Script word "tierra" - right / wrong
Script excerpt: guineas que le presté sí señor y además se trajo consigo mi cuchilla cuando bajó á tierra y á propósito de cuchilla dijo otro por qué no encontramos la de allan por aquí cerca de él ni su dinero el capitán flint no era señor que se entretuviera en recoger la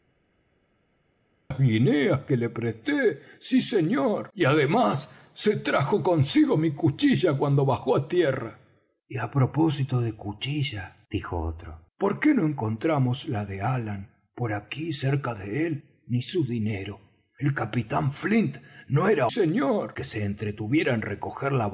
right